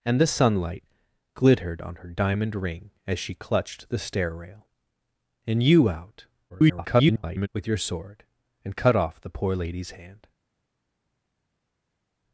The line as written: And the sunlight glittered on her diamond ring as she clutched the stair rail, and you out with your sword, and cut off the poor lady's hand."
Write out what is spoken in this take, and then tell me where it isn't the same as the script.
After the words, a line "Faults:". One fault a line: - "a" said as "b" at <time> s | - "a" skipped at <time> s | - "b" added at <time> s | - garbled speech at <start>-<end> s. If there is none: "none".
And the sunlight glittered on her diamond ring as she clutched the stair rail, and you out [garbled] with your sword, and cut off the poor lady's hand."
Faults:
- garbled speech at 6.5-7.5 s